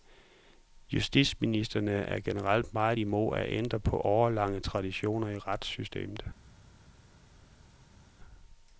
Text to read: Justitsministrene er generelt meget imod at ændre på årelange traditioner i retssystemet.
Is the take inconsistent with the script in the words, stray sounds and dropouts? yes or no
no